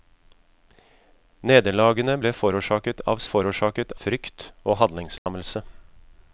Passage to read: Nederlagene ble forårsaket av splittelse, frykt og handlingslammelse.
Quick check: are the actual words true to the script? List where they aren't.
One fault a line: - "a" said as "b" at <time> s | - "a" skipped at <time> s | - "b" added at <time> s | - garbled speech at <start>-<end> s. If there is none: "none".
- "splittelse" said as "forårsaket" at 3.3 s